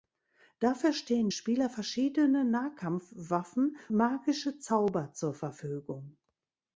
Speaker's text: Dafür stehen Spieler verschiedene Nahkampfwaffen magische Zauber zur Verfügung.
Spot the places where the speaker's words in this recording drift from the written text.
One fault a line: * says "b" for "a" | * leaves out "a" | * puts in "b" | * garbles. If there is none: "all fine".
all fine